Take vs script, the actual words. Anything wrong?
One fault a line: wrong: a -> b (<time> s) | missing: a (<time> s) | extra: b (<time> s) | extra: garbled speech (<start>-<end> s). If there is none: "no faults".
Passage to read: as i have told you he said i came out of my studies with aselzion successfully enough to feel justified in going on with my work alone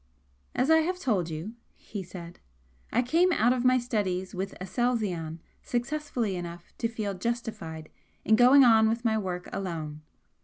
no faults